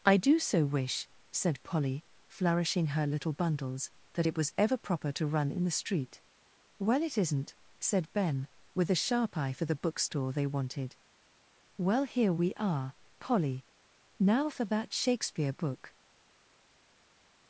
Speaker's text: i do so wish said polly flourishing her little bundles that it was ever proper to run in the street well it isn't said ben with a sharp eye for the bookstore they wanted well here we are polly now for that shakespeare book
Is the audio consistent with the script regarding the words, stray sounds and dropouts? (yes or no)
yes